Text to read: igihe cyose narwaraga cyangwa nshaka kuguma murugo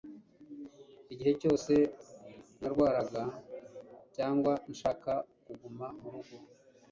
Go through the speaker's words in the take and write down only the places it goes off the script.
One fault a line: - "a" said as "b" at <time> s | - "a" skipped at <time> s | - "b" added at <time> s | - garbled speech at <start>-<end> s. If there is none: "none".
none